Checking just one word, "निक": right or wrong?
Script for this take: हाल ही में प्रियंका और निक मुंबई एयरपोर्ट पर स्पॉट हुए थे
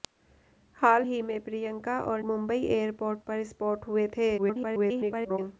wrong